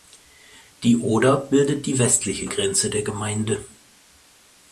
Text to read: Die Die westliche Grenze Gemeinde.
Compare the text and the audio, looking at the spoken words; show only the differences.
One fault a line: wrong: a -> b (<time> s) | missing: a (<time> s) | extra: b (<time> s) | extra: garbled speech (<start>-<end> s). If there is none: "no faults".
extra: Oder bildet (1.0 s)
extra: der (2.9 s)